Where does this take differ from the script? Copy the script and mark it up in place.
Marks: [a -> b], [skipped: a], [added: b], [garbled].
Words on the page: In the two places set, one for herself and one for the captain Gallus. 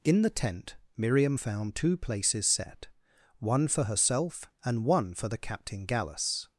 In the [added: tent Miriam found] two places set, one for herself and one for the captain Gallus.